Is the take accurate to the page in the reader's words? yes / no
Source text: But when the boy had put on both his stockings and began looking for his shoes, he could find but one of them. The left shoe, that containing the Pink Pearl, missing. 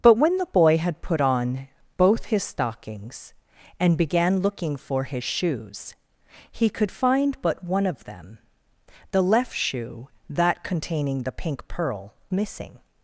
yes